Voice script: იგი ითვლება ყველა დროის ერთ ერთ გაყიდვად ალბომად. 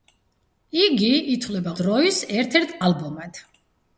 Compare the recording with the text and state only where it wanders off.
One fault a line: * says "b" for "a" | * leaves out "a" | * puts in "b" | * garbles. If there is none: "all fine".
* leaves out "ყველა"
* leaves out "გაყიდვად"